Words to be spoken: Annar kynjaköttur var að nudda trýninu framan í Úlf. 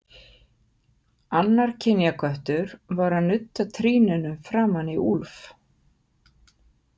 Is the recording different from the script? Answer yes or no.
no